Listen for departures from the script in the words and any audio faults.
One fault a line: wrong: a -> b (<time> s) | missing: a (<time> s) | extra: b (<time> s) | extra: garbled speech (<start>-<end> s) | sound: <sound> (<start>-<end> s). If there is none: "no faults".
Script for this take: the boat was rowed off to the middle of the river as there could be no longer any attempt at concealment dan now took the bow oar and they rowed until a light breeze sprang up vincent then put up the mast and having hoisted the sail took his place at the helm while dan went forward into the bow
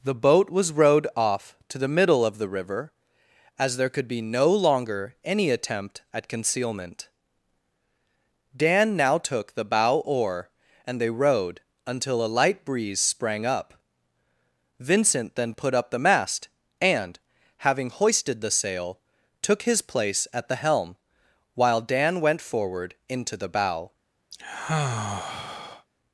sound: sigh (24.3-25.9 s)